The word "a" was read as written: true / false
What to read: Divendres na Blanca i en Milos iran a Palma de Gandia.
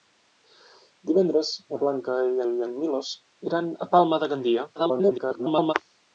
true